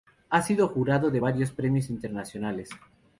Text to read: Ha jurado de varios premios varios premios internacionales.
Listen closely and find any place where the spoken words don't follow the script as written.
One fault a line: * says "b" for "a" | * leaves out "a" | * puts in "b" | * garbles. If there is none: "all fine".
* puts in "sido"
* leaves out "varios premios"